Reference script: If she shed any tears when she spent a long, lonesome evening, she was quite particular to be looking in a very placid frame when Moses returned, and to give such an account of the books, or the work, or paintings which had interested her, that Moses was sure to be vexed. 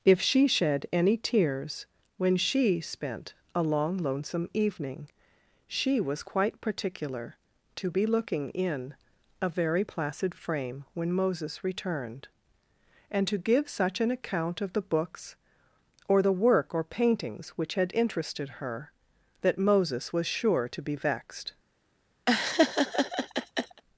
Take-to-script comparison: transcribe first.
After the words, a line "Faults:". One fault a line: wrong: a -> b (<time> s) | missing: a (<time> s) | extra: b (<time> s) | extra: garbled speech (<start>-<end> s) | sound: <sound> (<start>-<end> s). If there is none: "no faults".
If she shed any tears when she spent a long, lonesome evening, she was quite particular to be looking in a very placid frame when Moses returned, and to give such an account of the books, or the work, or paintings which had interested her, that Moses was sure to be vexed.
Faults:
sound: laugh (22.3-23.8 s)